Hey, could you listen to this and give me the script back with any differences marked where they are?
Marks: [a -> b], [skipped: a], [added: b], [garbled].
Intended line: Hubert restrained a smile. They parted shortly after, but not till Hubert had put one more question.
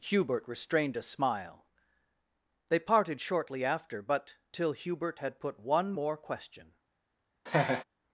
Hubert restrained a smile. They parted shortly after, but [skipped: not] till Hubert had put one more question.